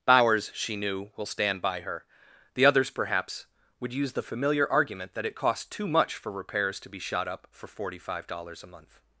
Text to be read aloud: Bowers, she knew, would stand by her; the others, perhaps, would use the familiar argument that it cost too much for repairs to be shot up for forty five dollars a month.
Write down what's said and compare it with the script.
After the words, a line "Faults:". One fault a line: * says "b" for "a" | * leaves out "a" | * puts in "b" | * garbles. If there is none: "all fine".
Bowers, she knew, will stand by her; the others, perhaps, would use the familiar argument that it cost too much for repairs to be shot up for forty five dollars a month.
Faults:
* says "will" for "would"